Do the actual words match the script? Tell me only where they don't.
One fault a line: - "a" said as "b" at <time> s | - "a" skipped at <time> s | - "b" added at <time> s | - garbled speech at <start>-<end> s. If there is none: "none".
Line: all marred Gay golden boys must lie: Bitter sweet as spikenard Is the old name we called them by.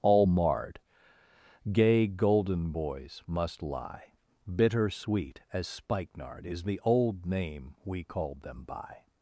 none